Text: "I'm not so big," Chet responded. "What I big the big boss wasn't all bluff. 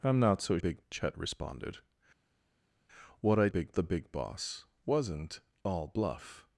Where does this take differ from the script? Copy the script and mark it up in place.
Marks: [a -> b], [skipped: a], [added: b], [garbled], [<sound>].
"I'm not so big," Chet responded. "What I big the big boss wasn't all bluff.